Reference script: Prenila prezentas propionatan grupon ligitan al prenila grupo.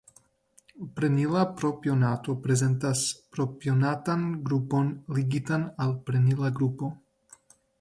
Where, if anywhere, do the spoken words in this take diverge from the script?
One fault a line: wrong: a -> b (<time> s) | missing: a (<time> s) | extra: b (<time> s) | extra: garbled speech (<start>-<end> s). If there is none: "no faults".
extra: propionato (1.6 s)